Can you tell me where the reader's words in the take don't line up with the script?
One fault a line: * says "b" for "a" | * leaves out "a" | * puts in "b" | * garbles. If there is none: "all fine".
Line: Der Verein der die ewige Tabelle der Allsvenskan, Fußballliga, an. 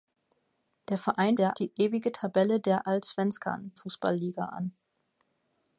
all fine